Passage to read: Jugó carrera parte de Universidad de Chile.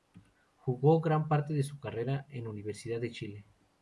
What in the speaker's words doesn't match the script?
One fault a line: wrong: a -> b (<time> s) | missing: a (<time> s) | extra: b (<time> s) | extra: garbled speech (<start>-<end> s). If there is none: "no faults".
wrong: carrera -> gran (1.0 s)
extra: su carrera en (1.6 s)